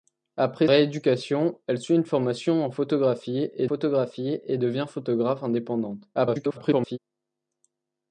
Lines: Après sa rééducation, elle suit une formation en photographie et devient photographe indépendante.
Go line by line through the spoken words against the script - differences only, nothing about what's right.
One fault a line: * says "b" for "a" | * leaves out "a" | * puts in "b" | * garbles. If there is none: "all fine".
* leaves out "sa"
* puts in "photographie et"
* garbles